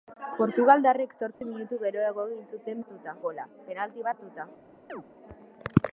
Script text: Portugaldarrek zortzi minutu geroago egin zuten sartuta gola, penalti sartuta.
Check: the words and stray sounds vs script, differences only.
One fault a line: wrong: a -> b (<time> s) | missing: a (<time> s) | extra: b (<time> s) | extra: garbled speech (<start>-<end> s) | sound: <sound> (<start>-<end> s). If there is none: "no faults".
sound: dropout (1.3-1.4 s)
sound: chirp (4.9-5.0 s)